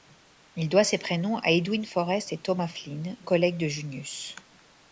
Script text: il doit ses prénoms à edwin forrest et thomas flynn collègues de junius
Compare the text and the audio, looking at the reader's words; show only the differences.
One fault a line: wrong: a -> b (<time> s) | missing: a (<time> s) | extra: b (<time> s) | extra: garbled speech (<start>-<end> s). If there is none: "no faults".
no faults